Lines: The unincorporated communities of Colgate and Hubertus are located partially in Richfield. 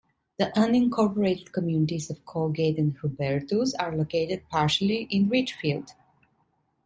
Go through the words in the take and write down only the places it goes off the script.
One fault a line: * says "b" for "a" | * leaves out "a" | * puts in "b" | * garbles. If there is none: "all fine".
all fine